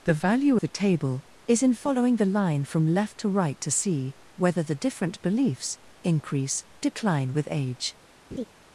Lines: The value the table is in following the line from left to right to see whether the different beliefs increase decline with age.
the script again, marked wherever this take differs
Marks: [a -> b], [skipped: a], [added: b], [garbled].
The value the table is in following the line from left to right to see whether the different beliefs increase decline with age.